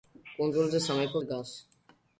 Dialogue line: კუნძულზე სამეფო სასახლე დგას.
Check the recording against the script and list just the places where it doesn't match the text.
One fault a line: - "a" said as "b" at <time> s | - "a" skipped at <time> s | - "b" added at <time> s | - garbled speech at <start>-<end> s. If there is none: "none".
- "სასახლე" skipped at 1.2 s